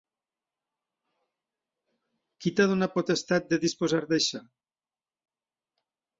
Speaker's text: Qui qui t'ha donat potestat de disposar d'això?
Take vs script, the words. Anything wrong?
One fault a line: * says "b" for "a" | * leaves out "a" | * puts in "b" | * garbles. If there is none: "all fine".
* leaves out "qui"